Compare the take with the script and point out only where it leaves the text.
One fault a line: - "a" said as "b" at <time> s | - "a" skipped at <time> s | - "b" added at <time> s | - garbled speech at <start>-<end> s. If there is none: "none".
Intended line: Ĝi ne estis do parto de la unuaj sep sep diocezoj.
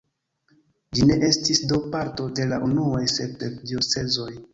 none